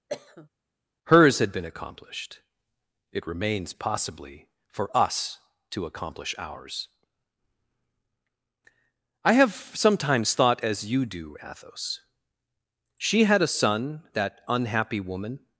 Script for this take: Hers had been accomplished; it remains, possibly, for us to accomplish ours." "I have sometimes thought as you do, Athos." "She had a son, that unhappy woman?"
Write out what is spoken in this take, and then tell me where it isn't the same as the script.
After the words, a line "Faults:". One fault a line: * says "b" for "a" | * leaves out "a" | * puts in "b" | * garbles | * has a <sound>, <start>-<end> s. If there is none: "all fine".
Hers had been accomplished; it remains, possibly, for us to accomplish ours." "I have sometimes thought as you do, Athos." "She had a son, that unhappy woman?"
Faults:
* has a cough, 0.1-0.5 s